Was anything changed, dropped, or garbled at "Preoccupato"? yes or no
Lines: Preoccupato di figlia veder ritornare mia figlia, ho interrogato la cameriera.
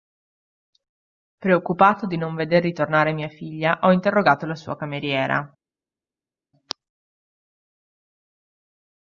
no